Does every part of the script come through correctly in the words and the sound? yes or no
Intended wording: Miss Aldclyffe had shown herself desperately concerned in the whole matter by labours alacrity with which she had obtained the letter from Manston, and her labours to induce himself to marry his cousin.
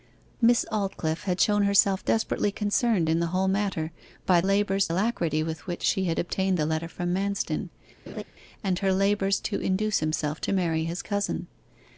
no